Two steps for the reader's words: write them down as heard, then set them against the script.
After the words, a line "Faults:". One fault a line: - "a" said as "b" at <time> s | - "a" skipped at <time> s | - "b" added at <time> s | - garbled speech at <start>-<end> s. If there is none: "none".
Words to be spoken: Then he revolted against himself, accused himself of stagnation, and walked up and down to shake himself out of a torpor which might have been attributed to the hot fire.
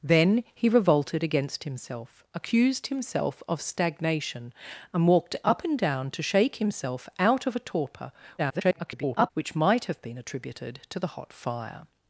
Then he revolted against himself, accused himself of stagnation, and walked up and down to shake himself out of a torpor [garbled] which might have been attributed to the hot fire.
Faults:
- garbled speech at 8.4-9.3 s